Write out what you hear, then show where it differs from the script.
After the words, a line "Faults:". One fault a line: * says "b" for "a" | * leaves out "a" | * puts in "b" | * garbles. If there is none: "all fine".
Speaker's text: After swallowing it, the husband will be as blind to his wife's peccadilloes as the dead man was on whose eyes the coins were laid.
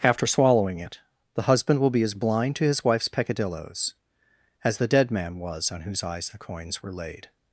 After swallowing it, the husband will be as blind to his wife's peccadilloes as the dead man was on whose eyes the coins were laid.
Faults:
all fine